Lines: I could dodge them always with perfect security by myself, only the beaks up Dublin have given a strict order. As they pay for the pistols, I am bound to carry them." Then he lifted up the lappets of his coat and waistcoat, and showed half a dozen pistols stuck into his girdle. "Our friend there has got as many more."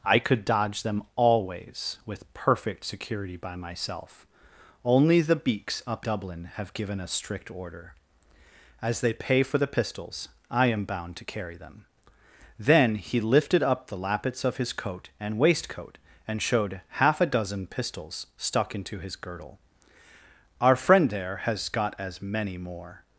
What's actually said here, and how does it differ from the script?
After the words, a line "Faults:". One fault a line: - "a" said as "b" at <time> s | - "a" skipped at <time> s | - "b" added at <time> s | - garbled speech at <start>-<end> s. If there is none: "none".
I could dodge them always with perfect security by myself, only the beaks up Dublin have given a strict order. As they pay for the pistols, I am bound to carry them." Then he lifted up the lappets of his coat and waistcoat, and showed half a dozen pistols stuck into his girdle. "Our friend there has got as many more."
Faults:
none